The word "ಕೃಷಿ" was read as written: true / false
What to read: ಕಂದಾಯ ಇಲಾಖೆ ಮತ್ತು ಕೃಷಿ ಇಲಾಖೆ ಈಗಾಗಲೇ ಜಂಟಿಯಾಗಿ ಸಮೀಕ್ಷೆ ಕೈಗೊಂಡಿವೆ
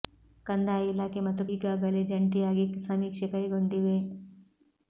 false